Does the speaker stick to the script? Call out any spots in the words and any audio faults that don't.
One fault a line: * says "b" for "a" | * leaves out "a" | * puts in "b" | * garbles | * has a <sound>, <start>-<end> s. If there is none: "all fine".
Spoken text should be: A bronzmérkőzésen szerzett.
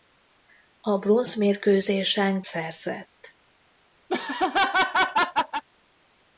* has a laugh, 4.1-5.6 s